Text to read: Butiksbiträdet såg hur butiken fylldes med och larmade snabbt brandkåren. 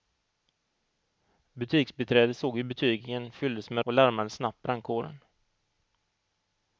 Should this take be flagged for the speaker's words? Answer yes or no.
no